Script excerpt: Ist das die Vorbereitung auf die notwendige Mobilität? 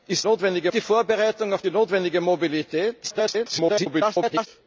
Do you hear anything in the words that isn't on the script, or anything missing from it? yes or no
yes